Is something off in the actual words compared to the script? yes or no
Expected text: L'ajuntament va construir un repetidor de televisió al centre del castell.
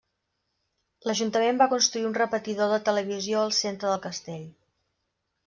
no